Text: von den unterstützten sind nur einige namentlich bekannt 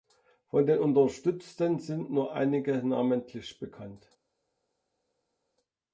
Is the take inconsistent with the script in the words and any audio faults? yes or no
no